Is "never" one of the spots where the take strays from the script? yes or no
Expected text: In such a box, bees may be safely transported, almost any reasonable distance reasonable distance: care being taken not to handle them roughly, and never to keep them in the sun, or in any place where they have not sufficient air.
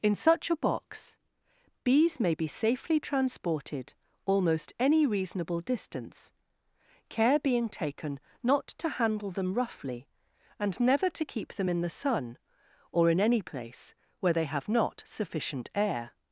no